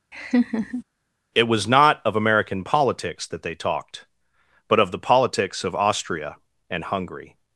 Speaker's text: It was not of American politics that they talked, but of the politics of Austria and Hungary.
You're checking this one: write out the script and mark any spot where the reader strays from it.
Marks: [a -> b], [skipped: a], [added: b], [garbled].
It was not of American politics that they talked, but of the politics of Austria and Hungary.